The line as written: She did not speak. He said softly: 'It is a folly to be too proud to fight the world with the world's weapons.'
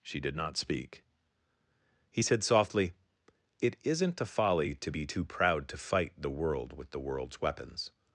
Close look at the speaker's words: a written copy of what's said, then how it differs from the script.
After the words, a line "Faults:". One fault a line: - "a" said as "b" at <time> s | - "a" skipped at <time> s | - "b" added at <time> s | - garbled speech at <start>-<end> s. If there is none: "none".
She did not speak. He said softly: 'It isn't a folly to be too proud to fight the world with the world's weapons.'
Faults:
- "is" said as "isn't" at 3.8 s